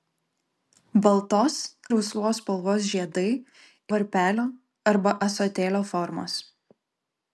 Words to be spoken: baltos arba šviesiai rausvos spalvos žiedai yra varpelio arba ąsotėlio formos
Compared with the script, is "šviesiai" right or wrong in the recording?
wrong